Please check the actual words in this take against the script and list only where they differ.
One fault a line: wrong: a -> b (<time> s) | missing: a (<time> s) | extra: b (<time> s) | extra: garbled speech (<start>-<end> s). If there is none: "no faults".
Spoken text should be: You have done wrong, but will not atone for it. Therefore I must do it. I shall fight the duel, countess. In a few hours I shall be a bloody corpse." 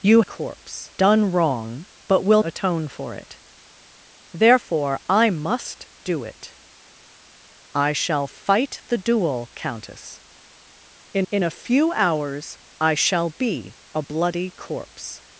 wrong: have -> corpse (0.2 s)
missing: not (2.4 s)
extra: in (11.3 s)